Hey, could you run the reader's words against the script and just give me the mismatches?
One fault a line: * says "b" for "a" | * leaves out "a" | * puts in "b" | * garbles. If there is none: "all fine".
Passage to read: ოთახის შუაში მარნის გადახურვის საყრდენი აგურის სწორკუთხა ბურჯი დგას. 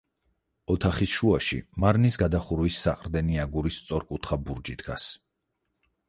all fine